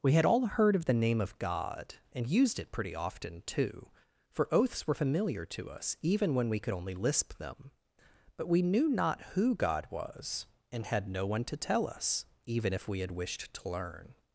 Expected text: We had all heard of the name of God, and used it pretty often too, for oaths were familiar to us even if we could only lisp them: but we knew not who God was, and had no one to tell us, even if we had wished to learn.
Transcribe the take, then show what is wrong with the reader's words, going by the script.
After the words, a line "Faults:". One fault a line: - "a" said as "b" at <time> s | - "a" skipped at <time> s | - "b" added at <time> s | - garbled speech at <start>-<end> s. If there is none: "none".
We had all heard of the name of God, and used it pretty often too, for oaths were familiar to us even when we could only lisp them: but we knew not who God was, and had no one to tell us, even if we had wished to learn.
Faults:
- "if" said as "when" at 6.3 s